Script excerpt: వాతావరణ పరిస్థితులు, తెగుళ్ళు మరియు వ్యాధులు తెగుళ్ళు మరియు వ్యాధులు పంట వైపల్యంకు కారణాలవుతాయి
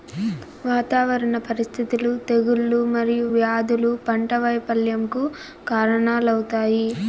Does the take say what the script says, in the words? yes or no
no